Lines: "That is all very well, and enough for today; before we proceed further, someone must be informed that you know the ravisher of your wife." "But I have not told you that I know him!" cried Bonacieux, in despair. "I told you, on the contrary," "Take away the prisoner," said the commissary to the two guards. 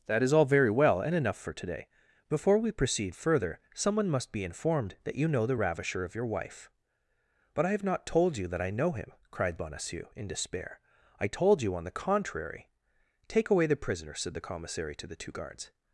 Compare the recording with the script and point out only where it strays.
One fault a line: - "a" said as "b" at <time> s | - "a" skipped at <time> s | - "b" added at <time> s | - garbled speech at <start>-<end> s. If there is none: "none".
none